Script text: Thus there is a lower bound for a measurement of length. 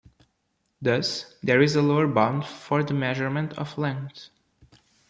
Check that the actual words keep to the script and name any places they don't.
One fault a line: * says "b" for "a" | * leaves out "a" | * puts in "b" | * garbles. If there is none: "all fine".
* says "the" for "a"